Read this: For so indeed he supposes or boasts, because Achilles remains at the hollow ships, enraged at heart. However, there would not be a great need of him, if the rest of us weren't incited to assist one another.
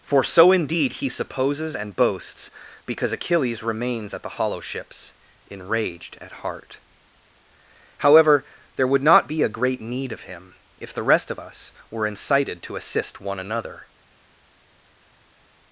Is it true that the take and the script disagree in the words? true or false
true